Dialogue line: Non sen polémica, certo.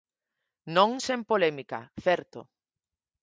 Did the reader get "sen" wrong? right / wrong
right